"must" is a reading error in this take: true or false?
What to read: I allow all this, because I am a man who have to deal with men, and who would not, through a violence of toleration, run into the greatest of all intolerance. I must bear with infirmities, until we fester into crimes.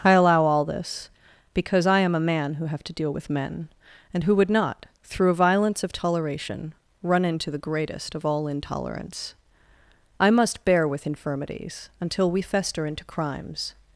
false